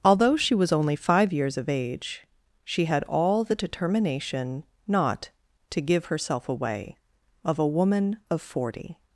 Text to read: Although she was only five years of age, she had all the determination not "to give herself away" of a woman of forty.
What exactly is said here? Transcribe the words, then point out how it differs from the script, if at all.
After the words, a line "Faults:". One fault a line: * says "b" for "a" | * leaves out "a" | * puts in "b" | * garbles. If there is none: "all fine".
Although she was only five years of age, she had all the determination not "to give herself away" of a woman of forty.
Faults:
all fine